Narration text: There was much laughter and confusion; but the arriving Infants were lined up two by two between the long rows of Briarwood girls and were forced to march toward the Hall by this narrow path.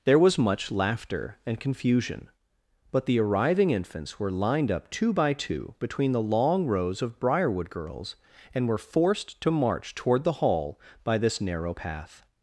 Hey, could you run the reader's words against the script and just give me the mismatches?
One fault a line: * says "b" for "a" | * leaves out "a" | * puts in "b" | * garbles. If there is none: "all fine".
all fine